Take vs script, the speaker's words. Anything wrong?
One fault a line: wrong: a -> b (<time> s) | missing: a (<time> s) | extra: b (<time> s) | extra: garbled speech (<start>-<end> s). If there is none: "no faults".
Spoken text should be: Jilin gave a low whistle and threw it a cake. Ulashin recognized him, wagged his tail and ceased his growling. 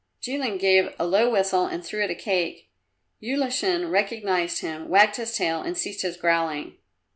no faults